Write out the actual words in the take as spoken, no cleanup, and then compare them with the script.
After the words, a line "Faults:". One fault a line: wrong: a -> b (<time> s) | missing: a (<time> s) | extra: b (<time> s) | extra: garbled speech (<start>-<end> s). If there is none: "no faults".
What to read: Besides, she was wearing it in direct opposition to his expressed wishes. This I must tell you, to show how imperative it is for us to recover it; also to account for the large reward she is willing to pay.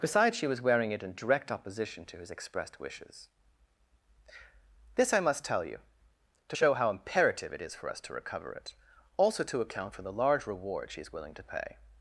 Besides, she was wearing it in direct opposition to his expressed wishes. This I must tell you, to show how imperative it is for us to recover it; also to account for the large reward she is willing to pay.
Faults:
no faults